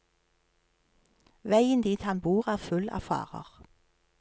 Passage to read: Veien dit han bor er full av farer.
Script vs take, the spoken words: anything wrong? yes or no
no